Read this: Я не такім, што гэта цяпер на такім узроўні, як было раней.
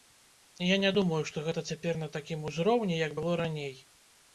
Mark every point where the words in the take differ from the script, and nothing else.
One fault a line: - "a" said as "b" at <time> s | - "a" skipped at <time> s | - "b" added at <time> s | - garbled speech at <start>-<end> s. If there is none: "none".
- "такім" said as "думаю" at 1.0 s